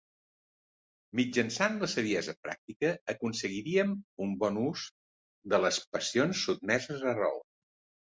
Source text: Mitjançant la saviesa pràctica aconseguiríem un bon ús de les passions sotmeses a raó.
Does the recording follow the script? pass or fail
pass